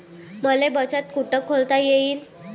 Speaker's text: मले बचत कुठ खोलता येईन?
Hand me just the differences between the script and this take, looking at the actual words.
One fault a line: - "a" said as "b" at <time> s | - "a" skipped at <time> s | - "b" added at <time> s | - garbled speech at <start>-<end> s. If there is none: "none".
none